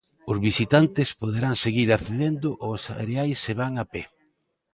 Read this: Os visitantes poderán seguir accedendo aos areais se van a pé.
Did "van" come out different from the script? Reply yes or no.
no